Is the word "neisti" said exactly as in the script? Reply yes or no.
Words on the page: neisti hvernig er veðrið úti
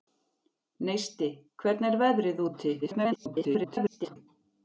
yes